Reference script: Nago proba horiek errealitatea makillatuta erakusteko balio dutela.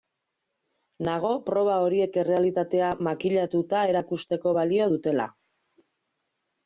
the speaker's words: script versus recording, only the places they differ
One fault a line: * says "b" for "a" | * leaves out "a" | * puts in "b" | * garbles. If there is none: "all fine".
all fine